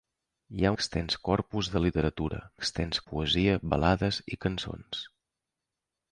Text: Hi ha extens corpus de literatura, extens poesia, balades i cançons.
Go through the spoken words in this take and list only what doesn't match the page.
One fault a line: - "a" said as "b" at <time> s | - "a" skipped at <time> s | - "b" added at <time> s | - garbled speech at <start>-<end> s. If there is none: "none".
none